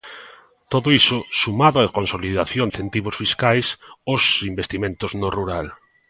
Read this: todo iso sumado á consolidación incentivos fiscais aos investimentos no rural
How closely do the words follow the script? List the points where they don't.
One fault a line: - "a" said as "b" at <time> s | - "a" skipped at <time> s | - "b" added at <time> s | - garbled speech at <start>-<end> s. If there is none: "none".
none